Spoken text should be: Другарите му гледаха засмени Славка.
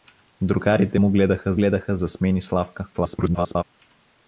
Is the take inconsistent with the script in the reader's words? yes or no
yes